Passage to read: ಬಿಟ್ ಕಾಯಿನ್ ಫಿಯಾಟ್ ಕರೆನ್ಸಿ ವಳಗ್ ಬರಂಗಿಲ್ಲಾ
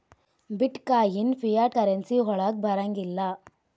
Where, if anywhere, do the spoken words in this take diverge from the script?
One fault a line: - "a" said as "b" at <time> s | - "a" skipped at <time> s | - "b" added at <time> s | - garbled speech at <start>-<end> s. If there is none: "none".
none